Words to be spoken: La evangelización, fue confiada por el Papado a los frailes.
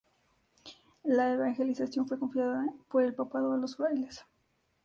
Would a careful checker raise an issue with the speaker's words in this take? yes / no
no